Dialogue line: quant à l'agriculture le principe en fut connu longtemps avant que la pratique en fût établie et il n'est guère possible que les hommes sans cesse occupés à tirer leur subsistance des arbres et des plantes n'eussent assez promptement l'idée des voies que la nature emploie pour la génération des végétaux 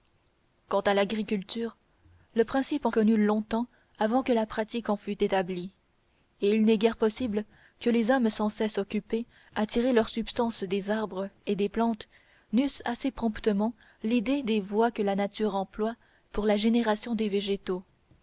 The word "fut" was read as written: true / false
false